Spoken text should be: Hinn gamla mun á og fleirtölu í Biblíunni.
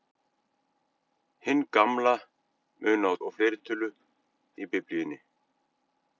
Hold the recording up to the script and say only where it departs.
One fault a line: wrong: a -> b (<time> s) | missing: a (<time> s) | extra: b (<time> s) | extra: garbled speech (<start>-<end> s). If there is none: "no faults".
no faults